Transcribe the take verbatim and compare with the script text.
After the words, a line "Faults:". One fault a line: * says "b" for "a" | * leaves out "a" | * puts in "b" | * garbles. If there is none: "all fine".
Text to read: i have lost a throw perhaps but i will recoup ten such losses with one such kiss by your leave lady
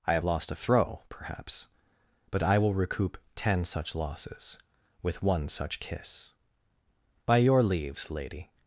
i have lost a throw perhaps but i will recoup ten such losses with one such kiss by your leaves lady
Faults:
* says "leaves" for "leave"